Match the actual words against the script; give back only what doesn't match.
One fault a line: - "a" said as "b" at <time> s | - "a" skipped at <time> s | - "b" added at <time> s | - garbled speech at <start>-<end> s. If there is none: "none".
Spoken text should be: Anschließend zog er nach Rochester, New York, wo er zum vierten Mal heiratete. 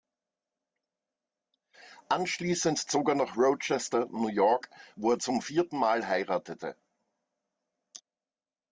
none